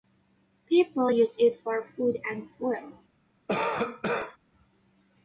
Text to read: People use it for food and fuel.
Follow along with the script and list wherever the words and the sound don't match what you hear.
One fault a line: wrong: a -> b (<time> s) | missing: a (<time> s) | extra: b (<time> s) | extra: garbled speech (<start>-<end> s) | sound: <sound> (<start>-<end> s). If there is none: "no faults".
sound: cough (3.5-4.4 s)